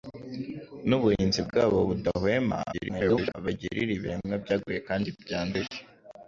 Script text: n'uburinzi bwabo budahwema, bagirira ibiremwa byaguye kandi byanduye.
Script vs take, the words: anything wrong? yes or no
yes